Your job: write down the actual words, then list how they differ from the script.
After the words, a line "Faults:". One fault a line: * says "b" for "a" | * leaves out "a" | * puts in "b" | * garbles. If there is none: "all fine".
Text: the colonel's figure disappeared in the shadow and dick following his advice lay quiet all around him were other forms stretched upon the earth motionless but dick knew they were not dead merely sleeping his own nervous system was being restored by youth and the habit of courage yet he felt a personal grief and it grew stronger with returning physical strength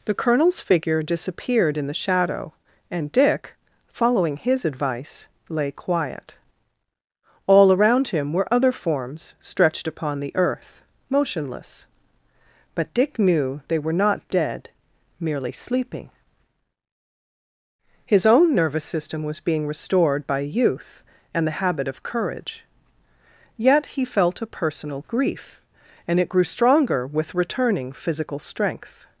the colonel's figure disappeared in the shadow and dick following his advice lay quiet all around him were other forms stretched upon the earth motionless but dick knew they were not dead merely sleeping his own nervous system was being restored by youth and the habit of courage yet he felt a personal grief and it grew stronger with returning physical strength
Faults:
all fine